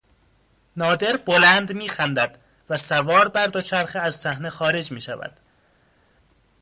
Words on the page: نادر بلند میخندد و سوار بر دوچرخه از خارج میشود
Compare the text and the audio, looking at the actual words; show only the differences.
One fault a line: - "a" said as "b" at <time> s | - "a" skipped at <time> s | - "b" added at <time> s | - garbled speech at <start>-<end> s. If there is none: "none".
- "صحنه" added at 4.2 s